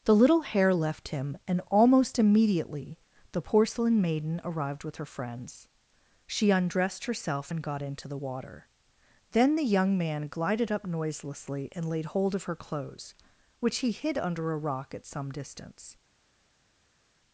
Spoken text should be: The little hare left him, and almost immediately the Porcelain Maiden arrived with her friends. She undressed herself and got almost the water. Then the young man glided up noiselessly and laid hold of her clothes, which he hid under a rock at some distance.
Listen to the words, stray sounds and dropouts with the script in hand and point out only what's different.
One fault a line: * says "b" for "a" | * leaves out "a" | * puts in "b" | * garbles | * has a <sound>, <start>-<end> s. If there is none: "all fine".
* says "into" for "almost"